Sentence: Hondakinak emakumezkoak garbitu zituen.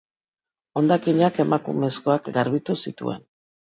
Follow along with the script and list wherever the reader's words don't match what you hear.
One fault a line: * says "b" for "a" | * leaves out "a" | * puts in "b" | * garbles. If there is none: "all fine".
all fine